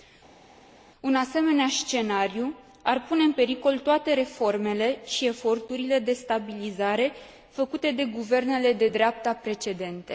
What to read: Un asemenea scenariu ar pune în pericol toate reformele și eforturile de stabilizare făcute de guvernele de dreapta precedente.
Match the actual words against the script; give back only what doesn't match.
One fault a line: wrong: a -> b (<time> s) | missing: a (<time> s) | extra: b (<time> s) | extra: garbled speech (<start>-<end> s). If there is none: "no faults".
no faults